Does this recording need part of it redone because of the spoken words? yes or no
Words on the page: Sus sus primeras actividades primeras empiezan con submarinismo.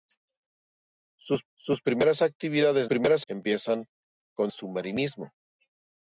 no